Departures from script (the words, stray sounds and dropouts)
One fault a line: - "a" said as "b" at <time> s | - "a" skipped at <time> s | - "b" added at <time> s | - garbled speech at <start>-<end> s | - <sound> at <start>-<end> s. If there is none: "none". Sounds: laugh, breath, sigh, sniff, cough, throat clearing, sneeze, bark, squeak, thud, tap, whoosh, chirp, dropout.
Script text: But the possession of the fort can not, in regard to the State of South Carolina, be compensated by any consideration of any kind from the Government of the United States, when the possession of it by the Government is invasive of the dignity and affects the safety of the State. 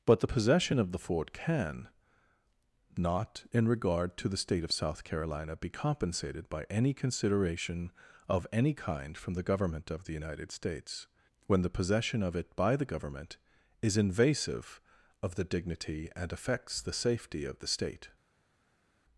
none